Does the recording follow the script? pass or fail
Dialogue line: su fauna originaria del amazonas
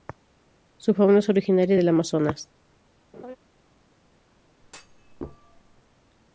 fail